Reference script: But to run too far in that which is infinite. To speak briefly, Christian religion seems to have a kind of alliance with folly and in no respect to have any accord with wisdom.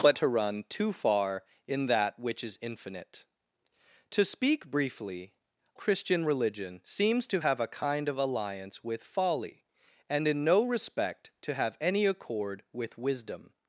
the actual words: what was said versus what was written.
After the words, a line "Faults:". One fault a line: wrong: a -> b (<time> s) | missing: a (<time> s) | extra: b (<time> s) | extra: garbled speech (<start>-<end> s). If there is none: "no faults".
But to run too far in that which is infinite. To speak briefly, Christian religion seems to have a kind of alliance with folly and in no respect to have any accord with wisdom.
Faults:
no faults